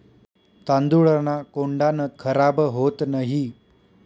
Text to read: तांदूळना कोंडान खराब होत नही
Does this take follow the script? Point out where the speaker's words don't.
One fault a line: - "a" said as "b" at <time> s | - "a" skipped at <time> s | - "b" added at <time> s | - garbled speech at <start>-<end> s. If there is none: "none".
none